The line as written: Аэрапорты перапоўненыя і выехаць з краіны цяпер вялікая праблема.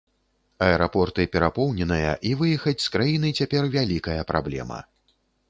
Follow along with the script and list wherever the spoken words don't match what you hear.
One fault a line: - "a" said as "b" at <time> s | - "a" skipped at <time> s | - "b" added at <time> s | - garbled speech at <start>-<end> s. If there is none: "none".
none